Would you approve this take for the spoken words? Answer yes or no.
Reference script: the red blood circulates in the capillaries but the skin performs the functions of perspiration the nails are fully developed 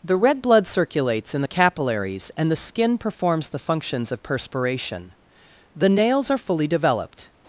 no